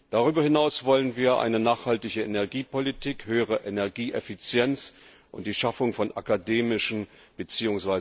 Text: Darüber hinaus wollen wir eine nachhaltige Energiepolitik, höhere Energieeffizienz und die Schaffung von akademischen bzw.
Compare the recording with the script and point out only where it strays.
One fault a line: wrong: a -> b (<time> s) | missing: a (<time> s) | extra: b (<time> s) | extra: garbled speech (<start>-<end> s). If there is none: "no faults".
no faults